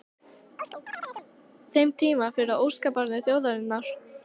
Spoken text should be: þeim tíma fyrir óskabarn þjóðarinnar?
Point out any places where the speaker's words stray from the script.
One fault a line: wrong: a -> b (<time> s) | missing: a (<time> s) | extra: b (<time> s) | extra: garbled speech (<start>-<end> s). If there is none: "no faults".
no faults